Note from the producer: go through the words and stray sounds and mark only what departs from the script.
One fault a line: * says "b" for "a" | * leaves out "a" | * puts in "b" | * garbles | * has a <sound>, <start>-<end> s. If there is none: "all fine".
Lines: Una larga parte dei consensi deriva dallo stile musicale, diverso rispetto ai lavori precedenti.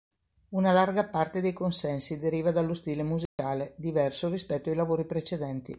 * has a dropout, 3.3-3.4 s